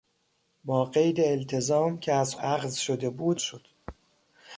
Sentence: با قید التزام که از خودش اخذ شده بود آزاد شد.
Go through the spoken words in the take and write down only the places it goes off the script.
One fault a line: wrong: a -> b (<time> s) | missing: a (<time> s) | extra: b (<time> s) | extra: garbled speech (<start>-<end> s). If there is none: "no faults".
missing: خودش (2.4 s)
missing: آزاد (3.4 s)